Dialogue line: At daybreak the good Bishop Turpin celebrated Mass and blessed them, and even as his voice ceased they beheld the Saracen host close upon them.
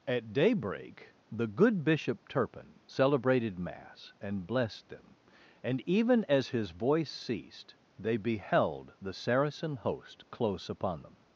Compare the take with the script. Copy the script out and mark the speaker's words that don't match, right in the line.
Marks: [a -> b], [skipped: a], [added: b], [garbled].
At daybreak the good Bishop Turpin celebrated Mass and blessed them, and even as his voice ceased they beheld the Saracen host close upon them.